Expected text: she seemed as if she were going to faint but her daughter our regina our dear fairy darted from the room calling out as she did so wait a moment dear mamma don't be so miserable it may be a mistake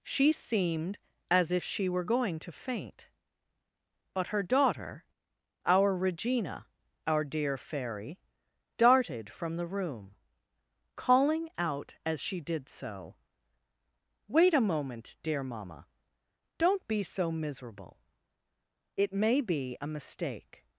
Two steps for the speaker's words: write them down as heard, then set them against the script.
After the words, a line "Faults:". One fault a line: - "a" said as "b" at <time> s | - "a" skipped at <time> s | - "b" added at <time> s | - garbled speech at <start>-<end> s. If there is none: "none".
she seemed as if she were going to faint but her daughter our regina our dear fairy darted from the room calling out as she did so wait a moment dear mamma don't be so miserable it may be a mistake
Faults:
none